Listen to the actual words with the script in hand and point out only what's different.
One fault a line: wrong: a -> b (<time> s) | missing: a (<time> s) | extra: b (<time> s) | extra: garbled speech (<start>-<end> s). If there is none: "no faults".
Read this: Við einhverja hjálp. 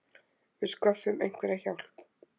extra: sköffum (0.7 s)